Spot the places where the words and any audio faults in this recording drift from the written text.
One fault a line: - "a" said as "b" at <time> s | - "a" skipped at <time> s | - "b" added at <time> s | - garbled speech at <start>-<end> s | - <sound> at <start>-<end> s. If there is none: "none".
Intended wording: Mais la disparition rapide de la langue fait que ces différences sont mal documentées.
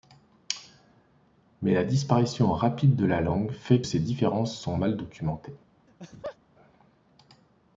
- "que" skipped at 3.8 s
- laugh at 5.9-6.4 s